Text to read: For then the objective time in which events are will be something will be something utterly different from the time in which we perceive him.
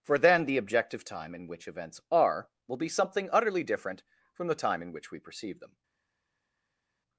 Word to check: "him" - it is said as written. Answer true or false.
false